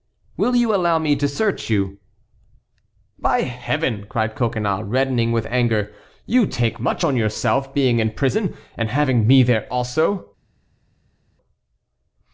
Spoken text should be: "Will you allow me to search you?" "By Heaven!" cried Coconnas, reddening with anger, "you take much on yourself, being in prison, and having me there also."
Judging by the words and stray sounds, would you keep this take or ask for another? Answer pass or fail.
pass